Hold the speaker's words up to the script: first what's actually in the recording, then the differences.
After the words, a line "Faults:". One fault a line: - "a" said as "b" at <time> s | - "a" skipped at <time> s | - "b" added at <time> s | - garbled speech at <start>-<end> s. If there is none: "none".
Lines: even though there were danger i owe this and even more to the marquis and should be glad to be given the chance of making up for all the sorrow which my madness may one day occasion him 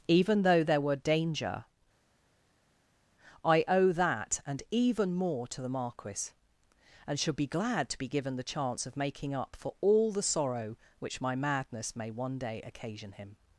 even though there were danger i owe that and even more to the marquis and should be glad to be given the chance of making up for all the sorrow which my madness may one day occasion him
Faults:
- "this" said as "that" at 3.9 s